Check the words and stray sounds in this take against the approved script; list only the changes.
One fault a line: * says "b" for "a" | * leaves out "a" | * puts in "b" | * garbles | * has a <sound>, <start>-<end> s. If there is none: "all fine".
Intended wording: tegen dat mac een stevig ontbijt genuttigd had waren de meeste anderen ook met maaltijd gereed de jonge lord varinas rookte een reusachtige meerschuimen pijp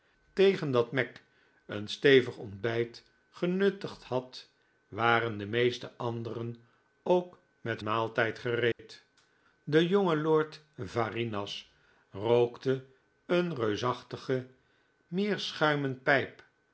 * has a dropout, 8.7-8.8 s